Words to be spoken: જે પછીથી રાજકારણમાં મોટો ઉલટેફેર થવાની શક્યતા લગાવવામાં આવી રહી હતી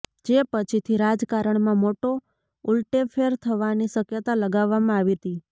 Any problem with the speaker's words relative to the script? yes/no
yes